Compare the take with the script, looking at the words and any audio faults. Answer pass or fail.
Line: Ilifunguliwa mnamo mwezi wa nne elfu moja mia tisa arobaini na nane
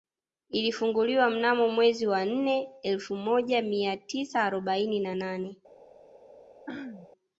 fail